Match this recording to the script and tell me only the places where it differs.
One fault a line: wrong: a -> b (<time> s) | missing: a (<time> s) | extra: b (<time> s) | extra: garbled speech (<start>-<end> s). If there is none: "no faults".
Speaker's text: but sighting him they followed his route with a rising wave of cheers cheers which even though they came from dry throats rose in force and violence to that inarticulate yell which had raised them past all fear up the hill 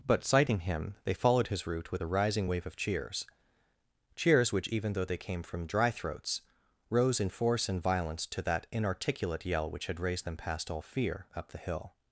no faults